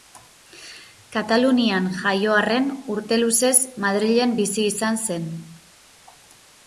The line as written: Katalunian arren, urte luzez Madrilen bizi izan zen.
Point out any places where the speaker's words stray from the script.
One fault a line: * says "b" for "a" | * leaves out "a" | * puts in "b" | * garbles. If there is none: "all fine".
* puts in "jaio"